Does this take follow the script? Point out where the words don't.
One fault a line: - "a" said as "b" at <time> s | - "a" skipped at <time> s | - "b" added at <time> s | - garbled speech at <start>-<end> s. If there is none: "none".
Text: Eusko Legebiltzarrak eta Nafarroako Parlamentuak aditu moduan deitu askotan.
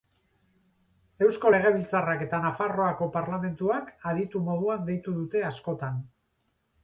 - "dute" added at 5.2 s